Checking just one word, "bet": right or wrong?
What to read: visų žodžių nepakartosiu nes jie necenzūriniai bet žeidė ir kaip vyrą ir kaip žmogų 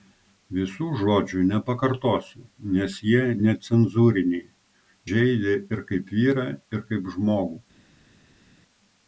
wrong